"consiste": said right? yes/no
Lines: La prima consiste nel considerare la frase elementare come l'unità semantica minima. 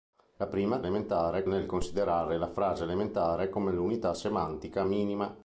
no